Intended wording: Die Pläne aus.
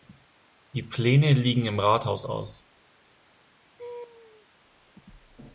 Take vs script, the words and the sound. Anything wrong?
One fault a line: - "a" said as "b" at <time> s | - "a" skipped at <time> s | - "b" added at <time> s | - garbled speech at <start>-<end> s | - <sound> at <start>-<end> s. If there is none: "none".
- "liegen im Rathaus" added at 1.3 s
- laugh at 3.8-4.5 s